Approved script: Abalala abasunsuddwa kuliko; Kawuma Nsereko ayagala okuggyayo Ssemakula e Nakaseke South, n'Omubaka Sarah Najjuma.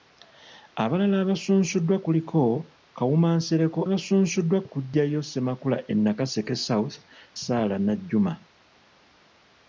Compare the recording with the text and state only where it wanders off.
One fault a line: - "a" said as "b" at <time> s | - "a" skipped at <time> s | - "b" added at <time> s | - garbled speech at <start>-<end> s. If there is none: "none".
- "ayagala" said as "abasunsuddwa" at 3.9 s
- "n'Omubaka" skipped at 7.0 s